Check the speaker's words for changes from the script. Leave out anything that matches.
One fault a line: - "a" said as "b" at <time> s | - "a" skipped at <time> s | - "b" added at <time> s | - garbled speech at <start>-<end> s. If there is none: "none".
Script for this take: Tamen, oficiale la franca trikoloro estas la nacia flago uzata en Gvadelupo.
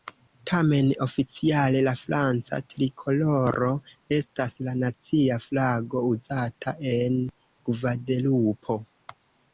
none